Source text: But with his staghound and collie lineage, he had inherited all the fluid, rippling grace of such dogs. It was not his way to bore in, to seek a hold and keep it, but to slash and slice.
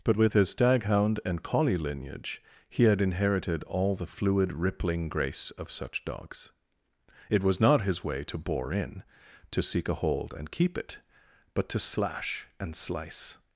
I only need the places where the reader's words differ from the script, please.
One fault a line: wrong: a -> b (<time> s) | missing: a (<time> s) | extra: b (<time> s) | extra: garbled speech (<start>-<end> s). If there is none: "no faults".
no faults